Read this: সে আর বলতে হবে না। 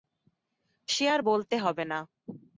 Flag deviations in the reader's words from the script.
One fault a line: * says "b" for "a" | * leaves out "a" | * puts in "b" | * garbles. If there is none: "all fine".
all fine